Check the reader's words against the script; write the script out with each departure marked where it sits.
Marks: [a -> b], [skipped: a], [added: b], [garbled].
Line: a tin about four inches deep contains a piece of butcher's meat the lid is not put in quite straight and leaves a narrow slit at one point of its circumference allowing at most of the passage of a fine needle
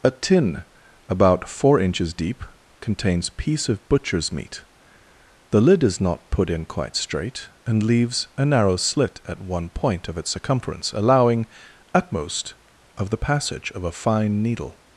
a tin about four inches deep contains [skipped: a] piece of butcher's meat the lid is not put in quite straight and leaves a narrow slit at one point of its circumference allowing at most of the passage of a fine needle